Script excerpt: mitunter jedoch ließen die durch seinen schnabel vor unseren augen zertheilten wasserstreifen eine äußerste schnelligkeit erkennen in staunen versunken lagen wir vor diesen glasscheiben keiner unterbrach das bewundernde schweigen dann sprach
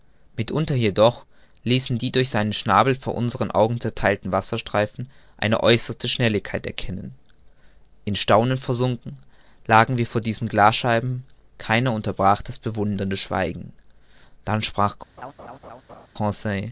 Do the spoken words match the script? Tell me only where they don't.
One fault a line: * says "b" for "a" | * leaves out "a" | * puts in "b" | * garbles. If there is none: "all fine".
all fine